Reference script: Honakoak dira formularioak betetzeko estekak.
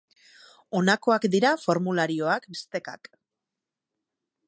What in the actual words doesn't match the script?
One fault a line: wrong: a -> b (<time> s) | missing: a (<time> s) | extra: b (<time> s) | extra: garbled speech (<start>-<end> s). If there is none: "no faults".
missing: betetzeko (2.5 s)